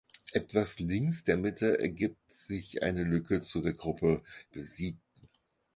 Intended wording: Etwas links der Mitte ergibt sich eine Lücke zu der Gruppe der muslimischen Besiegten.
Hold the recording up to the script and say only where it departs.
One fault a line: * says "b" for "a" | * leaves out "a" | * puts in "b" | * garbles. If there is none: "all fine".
* leaves out "der muslimischen"